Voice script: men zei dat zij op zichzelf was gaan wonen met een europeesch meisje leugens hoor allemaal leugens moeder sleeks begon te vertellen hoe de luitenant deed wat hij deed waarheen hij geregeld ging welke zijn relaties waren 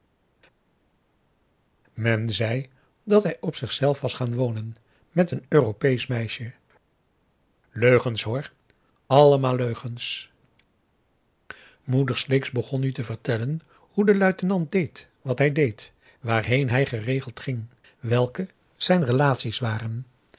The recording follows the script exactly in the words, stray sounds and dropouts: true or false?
false